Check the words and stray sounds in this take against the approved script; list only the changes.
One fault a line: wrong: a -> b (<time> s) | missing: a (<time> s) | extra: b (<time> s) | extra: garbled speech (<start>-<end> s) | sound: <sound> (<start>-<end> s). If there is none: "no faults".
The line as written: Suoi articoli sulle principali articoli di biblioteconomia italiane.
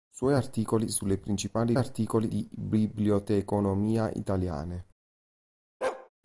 sound: bark (5.8-6.1 s)